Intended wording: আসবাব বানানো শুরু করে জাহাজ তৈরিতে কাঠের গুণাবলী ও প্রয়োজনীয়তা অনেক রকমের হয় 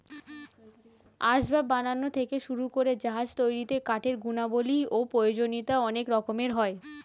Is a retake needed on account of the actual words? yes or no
yes